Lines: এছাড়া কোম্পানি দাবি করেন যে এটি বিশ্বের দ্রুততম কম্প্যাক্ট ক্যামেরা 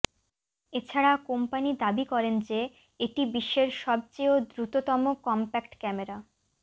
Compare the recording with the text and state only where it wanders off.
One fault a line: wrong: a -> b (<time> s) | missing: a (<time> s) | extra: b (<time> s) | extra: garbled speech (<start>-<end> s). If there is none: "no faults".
extra: সবচেয় (3.8 s)